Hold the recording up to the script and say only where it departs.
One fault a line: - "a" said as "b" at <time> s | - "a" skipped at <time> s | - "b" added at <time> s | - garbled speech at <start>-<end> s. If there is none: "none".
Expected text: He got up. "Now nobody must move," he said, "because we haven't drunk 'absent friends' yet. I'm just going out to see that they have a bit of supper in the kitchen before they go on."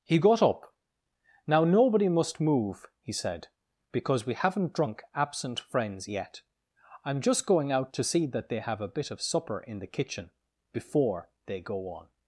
none